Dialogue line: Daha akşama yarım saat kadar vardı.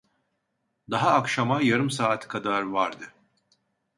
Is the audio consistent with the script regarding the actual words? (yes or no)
yes